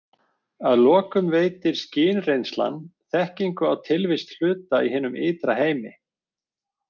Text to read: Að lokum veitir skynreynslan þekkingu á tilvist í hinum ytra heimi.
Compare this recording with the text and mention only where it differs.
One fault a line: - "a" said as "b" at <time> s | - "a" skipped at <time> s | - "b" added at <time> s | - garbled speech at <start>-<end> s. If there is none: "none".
- "hluta" added at 4.4 s